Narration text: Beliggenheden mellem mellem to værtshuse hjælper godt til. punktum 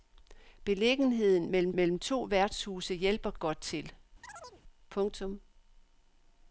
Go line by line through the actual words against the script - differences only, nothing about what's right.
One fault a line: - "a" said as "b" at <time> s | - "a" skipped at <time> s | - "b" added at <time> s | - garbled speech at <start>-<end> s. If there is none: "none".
none